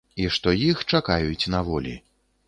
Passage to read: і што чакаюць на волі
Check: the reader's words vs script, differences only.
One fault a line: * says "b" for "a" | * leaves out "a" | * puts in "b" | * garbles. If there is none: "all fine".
* puts in "іх"